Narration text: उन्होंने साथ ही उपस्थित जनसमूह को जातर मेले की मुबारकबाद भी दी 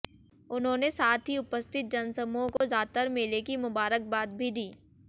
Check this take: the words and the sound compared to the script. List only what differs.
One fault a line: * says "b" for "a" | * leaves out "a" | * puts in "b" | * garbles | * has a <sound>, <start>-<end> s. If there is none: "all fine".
* has a dropout, 2.6-2.6 s